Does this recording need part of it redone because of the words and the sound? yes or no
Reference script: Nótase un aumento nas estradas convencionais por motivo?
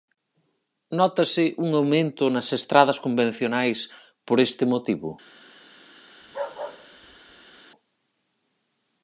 yes